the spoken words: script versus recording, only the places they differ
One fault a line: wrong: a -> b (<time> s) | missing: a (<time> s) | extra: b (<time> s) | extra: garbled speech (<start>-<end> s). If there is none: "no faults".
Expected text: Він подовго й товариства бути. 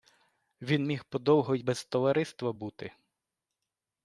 extra: міг (0.8 s)
extra: без (1.6 s)